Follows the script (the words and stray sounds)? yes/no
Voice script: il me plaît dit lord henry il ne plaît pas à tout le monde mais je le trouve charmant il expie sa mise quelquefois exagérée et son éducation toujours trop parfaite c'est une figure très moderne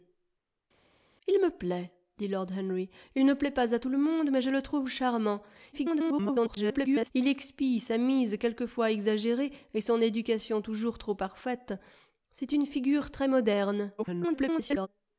no